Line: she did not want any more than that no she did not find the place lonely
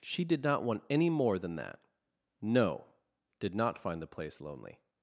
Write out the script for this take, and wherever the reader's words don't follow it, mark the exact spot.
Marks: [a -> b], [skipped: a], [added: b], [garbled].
she did not want any more than that no [skipped: she] did not find the place lonely